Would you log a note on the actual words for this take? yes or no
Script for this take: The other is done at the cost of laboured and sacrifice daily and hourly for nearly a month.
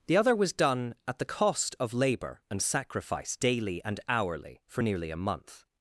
yes